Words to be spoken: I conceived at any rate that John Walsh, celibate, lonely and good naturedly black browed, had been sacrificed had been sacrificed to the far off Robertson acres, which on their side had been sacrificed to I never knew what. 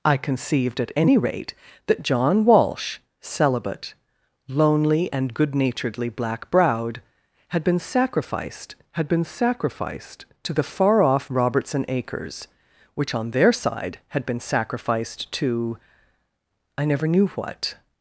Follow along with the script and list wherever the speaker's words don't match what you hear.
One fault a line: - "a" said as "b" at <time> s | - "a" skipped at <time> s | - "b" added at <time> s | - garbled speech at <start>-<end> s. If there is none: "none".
none